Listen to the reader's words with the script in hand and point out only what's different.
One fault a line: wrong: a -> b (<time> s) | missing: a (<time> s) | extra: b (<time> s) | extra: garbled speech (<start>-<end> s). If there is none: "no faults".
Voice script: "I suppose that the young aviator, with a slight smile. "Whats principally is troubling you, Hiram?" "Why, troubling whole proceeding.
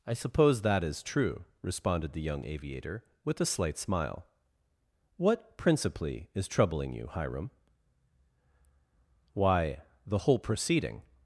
extra: is true responded (0.8 s)
wrong: Whats -> What (5.2 s)
wrong: troubling -> the (10.1 s)